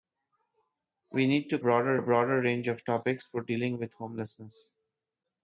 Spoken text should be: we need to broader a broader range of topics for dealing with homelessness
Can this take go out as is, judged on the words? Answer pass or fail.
pass